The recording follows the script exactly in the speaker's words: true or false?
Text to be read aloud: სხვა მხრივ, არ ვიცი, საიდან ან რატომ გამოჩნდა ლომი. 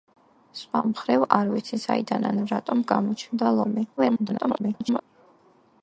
false